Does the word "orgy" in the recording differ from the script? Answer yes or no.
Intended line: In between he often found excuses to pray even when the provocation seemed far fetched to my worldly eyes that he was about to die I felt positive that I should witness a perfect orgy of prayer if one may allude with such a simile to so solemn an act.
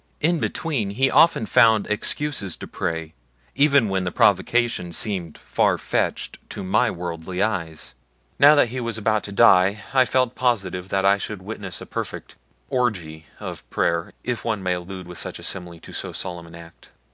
no